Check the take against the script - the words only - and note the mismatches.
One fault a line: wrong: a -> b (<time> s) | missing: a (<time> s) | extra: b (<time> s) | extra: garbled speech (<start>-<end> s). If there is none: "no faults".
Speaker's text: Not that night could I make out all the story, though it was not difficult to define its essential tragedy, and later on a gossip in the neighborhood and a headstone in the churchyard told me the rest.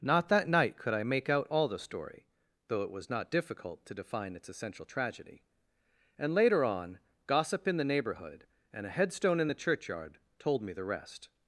missing: a (7.0 s)